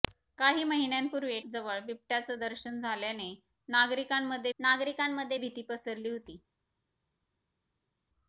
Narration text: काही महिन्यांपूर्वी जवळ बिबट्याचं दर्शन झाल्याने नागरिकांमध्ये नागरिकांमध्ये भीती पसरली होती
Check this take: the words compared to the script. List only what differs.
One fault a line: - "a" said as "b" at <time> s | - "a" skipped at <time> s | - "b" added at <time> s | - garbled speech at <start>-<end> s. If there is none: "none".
none